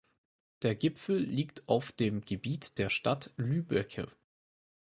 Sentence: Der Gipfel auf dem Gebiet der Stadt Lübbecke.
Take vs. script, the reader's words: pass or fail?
fail